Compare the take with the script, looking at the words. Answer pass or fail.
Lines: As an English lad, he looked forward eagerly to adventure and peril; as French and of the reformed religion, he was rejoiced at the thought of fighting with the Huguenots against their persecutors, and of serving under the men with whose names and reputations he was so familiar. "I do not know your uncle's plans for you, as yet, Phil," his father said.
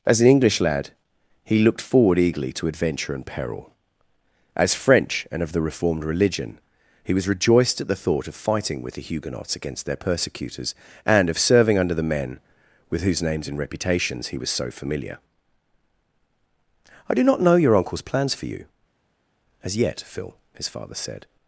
pass